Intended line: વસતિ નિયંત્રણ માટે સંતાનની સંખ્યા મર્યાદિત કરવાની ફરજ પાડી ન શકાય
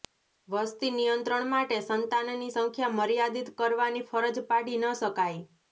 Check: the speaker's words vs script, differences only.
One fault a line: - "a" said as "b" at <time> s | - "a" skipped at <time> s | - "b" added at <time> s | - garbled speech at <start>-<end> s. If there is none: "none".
none